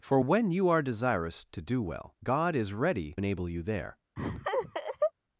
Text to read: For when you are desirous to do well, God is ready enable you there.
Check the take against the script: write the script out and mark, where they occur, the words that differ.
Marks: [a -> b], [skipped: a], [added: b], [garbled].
For when you are desirous to do well, God is ready enable you there.